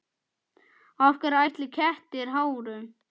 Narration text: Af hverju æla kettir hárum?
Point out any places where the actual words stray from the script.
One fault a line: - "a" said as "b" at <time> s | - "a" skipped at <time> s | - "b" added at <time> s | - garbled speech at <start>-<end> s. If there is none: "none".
none